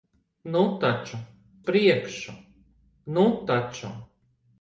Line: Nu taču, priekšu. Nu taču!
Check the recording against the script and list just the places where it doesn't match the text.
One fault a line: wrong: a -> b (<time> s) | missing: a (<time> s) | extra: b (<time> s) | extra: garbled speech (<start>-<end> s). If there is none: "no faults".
no faults